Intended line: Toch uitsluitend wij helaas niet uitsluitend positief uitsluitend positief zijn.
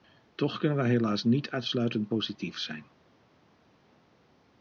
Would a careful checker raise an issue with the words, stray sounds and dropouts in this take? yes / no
yes